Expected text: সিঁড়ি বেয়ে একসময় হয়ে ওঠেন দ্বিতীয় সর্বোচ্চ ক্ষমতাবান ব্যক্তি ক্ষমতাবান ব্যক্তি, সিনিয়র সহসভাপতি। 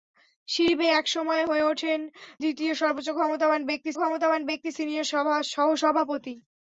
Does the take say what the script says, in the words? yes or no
yes